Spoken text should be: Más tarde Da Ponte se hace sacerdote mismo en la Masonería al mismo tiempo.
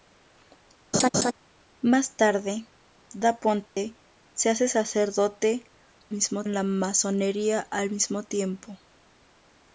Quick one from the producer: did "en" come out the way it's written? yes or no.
yes